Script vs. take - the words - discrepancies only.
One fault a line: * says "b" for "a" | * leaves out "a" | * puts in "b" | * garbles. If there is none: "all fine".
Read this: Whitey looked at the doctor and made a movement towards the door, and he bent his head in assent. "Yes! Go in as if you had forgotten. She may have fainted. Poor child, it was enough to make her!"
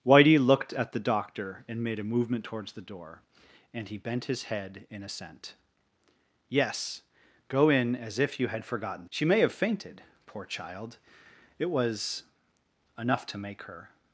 all fine